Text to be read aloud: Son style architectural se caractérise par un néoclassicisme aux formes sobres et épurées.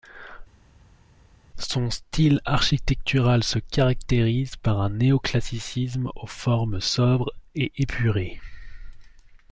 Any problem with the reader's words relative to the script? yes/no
no